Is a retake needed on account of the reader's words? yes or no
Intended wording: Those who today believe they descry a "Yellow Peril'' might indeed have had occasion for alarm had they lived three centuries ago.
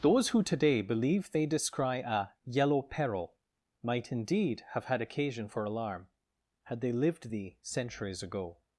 yes